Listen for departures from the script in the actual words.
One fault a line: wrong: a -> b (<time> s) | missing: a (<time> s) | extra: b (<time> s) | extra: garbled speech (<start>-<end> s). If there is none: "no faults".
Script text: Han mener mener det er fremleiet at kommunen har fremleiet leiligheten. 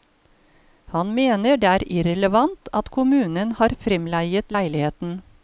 missing: mener (1.6 s)
wrong: fremleiet -> irrelevant (2.0 s)